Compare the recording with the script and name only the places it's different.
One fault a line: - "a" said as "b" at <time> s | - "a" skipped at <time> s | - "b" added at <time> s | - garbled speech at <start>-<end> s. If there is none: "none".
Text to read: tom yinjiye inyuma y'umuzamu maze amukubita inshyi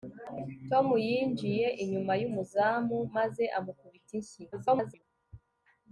- garbled speech at 4.5-5.0 s